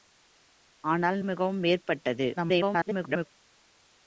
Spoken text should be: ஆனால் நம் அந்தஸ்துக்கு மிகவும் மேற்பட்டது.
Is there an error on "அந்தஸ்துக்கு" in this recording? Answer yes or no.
yes